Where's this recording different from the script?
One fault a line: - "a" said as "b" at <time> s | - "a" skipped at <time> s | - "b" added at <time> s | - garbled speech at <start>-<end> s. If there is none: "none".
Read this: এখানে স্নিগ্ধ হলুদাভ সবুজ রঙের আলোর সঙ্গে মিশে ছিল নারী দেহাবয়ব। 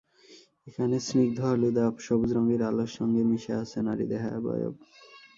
- "ছিল" said as "আছে" at 3.6 s